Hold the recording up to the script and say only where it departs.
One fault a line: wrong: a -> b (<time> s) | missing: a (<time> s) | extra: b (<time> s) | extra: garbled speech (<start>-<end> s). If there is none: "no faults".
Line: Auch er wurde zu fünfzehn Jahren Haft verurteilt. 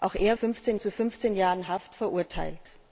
wrong: wurde -> fünfzehn (0.3 s)